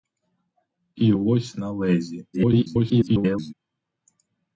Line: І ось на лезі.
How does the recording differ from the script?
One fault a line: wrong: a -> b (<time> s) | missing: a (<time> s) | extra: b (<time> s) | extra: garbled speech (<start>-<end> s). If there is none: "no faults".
extra: garbled speech (2.3-3.5 s)